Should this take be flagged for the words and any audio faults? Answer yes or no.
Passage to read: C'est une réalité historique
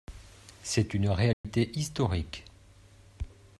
yes